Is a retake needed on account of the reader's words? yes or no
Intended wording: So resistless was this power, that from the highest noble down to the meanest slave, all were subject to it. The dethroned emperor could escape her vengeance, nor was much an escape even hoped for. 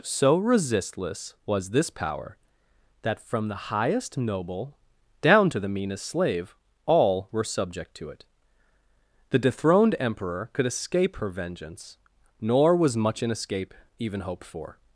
no